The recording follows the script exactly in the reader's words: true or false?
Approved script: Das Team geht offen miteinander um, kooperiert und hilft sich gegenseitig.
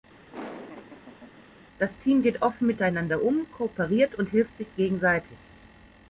true